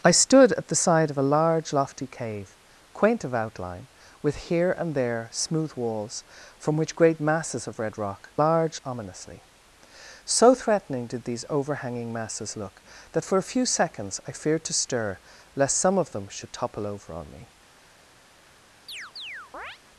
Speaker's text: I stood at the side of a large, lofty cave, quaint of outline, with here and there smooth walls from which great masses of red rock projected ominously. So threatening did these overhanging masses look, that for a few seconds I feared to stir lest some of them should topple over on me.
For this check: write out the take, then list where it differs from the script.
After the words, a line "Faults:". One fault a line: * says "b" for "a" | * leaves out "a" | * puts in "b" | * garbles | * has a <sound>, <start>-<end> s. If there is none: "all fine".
I stood at the side of a large, lofty cave, quaint of outline, with here and there smooth walls from which great masses of red rock large ominously. So threatening did these overhanging masses look, that for a few seconds I feared to stir lest some of them should topple over on me.
Faults:
* says "large" for "projected"
* has a chirp, 18.9-19.8 s